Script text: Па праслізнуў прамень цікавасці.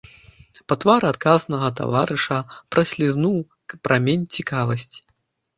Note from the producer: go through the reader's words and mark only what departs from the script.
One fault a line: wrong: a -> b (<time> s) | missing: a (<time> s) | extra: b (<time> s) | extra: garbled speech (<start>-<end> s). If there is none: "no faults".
extra: твары адказнага таварыша (0.8 s)